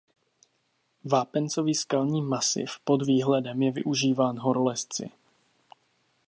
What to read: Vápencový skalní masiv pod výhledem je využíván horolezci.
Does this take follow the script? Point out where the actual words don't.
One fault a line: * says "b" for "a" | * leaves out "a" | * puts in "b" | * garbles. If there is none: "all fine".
all fine